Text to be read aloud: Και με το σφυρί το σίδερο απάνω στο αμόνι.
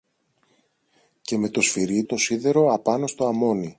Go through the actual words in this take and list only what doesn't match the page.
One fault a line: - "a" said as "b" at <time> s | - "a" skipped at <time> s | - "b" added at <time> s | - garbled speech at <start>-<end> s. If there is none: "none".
none